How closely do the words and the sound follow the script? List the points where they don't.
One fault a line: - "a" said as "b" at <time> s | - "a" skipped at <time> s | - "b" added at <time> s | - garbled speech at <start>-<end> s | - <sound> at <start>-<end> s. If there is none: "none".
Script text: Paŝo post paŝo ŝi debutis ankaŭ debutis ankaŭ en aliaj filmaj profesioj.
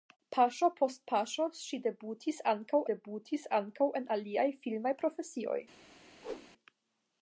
- whoosh at 6.2-6.5 s